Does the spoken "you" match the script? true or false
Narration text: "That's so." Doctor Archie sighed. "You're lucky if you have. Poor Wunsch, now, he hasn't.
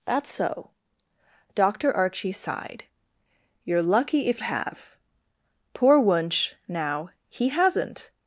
false